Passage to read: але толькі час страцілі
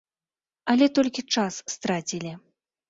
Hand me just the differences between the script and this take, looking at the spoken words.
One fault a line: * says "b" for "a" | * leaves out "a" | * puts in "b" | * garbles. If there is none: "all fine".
all fine